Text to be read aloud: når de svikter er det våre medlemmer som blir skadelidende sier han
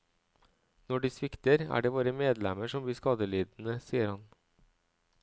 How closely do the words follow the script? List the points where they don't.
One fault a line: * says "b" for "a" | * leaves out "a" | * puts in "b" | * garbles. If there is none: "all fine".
all fine